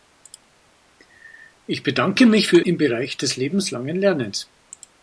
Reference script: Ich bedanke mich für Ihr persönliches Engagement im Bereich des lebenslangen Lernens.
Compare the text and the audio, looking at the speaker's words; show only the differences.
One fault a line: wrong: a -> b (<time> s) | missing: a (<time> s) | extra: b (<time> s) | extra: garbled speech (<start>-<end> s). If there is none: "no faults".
missing: Ihr persönliches Engagement (2.6 s)